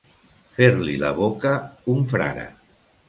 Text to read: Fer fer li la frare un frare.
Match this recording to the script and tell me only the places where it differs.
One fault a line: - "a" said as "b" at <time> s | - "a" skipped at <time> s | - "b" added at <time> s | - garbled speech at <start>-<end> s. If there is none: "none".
- "fer" skipped at 0.7 s
- "frare" said as "boca" at 1.2 s